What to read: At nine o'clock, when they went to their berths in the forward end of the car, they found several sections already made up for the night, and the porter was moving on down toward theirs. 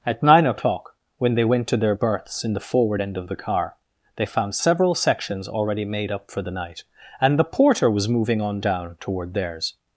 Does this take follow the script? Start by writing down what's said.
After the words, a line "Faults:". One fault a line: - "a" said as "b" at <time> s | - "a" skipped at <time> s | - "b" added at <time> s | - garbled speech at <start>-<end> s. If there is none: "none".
At nine o'clock, when they went to their berths in the forward end of the car, they found several sections already made up for the night, and the porter was moving on down toward theirs.
Faults:
none